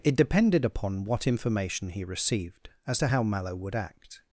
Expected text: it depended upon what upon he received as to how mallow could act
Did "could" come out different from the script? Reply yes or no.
yes